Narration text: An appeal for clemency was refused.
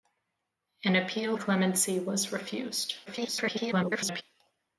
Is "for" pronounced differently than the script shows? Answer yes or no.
yes